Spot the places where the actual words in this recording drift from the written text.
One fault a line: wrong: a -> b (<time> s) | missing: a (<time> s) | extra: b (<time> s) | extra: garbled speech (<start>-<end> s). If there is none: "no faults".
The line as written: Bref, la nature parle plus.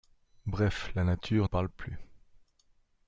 no faults